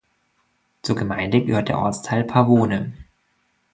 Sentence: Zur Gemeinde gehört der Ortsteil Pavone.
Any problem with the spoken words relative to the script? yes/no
no